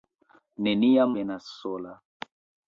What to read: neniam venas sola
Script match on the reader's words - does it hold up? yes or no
yes